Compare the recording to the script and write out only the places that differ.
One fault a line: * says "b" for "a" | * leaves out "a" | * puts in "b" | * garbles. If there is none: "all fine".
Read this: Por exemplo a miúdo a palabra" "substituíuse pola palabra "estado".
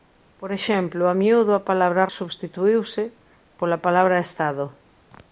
all fine